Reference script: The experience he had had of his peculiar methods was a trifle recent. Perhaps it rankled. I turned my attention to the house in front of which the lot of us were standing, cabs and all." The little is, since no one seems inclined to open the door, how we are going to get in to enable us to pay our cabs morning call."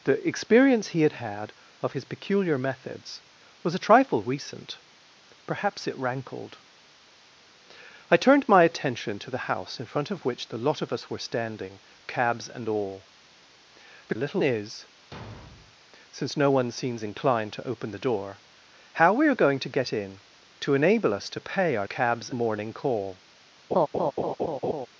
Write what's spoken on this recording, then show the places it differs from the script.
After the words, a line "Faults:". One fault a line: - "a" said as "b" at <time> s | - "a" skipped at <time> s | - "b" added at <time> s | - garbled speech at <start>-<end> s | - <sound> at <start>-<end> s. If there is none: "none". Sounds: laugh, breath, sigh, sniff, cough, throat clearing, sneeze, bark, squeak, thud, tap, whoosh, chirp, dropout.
The experience he had had of his peculiar methods was a trifle recent. Perhaps it rankled. I turned my attention to the house in front of which the lot of us were standing, cabs and all." The little is, since no one seems inclined to open the door, how we are going to get in to enable us to pay our cabs morning call."
Faults:
- thud at 15.1-15.8 s
- laugh at 23.7-24.9 s